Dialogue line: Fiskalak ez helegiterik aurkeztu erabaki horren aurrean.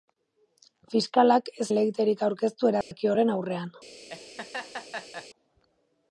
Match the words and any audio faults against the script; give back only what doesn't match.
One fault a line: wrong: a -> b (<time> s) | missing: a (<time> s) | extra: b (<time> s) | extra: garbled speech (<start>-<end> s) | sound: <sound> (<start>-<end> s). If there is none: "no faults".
sound: dropout (2.8-2.9 s)
sound: laugh (4.1-5.3 s)